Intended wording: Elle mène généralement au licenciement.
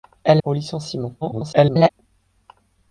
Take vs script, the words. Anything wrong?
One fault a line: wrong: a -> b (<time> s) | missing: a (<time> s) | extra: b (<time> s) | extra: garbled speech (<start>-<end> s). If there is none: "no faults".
missing: mène généralement (0.4 s)
extra: garbled speech (1.2-1.9 s)